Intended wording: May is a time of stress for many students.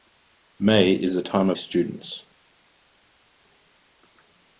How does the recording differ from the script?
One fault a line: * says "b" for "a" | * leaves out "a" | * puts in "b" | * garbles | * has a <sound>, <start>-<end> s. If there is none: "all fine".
* leaves out "stress for many"